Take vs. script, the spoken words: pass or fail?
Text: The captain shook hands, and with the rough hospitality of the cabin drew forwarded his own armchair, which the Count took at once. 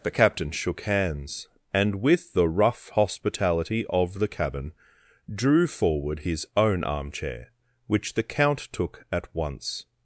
fail